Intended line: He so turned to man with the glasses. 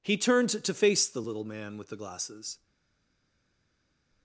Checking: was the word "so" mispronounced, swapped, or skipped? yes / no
yes